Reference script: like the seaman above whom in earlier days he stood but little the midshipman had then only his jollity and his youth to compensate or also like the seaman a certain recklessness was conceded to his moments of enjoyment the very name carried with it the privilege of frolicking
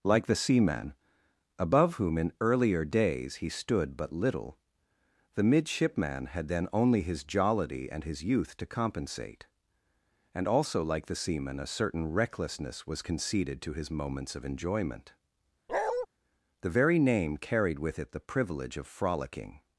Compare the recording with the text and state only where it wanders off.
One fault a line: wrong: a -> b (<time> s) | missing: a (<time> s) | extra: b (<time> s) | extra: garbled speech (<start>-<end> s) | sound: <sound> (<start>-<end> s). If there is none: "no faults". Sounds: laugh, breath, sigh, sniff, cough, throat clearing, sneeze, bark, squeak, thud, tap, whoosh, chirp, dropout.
wrong: or -> and (10.3 s)
sound: bark (15.7-16.1 s)